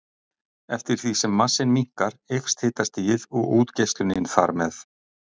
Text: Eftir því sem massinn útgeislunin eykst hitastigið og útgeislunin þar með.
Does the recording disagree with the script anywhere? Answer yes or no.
yes